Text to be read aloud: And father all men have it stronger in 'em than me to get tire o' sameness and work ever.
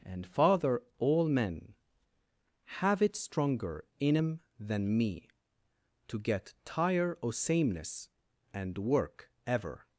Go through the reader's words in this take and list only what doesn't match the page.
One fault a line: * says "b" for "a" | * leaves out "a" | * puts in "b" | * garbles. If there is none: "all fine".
all fine